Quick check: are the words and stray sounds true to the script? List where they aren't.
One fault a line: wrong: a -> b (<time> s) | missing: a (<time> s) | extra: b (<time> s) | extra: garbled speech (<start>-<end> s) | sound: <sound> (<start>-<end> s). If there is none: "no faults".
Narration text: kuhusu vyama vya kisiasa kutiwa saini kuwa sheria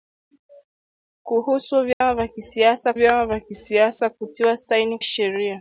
sound: dropout (1.9-2.0 s)
extra: vyama vya kisiasa (2.9 s)
missing: kuwa (5.0 s)